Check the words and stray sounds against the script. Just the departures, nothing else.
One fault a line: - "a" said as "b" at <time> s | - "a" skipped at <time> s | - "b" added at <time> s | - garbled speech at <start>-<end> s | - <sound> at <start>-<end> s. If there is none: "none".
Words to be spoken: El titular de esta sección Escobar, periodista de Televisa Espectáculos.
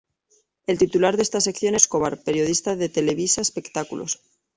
none